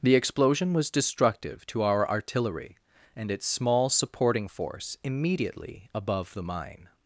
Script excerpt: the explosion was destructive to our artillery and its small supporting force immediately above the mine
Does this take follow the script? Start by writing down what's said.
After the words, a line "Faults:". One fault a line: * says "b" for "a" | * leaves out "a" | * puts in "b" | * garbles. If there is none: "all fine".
the explosion was destructive to our artillery and its small supporting force immediately above the mine
Faults:
all fine